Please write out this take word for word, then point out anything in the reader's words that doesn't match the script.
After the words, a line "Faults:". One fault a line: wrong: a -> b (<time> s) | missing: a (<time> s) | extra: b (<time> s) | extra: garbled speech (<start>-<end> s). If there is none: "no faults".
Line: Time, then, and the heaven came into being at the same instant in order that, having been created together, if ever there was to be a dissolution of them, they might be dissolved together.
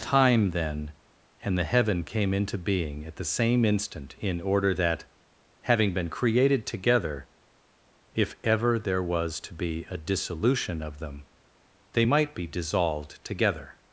Time, then, and the heaven came into being at the same instant in order that, having been created together, if ever there was to be a dissolution of them, they might be dissolved together.
Faults:
no faults